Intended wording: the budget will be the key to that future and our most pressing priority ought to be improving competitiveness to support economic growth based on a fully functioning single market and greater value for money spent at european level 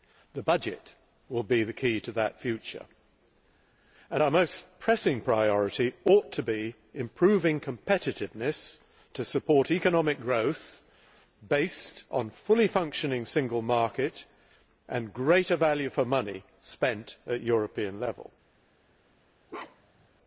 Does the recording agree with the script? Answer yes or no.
yes